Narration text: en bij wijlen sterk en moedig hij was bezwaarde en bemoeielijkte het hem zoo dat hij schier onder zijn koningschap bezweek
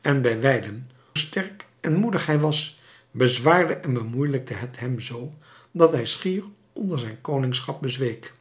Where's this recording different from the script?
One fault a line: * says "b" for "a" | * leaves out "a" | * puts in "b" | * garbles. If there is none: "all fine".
all fine